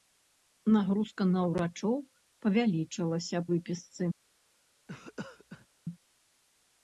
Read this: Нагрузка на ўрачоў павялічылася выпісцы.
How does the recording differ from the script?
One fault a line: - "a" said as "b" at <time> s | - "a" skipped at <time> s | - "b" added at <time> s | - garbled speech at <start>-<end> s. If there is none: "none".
none